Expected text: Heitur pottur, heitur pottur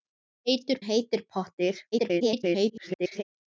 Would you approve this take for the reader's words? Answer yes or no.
no